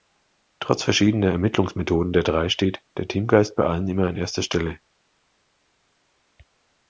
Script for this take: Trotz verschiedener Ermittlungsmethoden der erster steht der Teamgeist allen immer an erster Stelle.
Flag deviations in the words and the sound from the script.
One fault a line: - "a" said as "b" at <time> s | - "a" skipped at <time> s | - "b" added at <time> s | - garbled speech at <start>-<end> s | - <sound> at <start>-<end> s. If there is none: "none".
- "erster" said as "drei" at 2.2 s
- "bei" added at 3.6 s